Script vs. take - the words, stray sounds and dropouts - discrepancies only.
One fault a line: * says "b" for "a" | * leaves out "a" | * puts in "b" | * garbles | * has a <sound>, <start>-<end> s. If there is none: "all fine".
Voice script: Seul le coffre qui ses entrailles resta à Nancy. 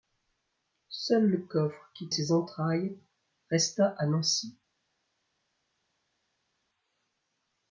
all fine